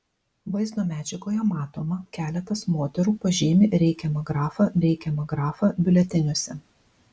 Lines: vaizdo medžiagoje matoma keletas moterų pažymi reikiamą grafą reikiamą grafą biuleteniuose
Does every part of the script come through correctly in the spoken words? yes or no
yes